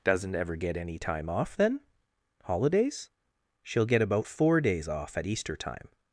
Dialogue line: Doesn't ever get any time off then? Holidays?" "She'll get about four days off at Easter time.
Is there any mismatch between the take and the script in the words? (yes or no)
no